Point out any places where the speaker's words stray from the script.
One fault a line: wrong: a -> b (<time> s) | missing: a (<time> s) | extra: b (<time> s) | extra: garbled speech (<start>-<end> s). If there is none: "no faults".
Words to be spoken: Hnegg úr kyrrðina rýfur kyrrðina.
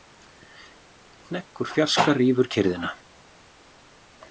wrong: kyrrðina -> fjarska (1.8 s)